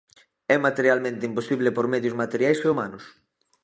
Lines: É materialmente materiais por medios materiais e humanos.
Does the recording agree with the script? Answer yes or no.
no